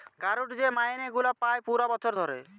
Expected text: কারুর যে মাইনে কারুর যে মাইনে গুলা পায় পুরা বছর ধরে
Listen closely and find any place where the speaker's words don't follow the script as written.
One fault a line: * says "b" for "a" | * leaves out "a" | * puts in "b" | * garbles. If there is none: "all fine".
* leaves out "কারুর যে মাইনে"